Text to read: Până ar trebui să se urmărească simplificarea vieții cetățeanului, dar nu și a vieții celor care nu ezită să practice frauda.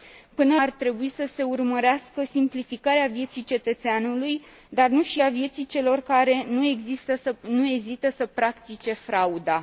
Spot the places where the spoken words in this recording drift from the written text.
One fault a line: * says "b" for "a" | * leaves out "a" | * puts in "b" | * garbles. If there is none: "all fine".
all fine